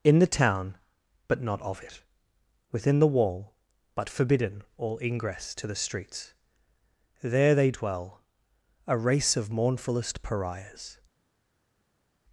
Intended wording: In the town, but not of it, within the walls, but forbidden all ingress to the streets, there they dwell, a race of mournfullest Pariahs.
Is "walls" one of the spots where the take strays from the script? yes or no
yes